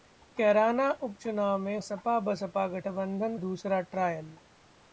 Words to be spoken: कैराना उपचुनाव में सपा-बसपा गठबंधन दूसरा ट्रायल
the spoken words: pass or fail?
pass